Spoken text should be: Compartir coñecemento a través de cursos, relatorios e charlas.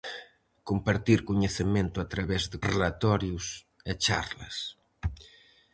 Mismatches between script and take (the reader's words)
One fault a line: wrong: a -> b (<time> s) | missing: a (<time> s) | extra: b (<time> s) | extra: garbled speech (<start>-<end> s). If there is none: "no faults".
missing: cursos (2.6 s)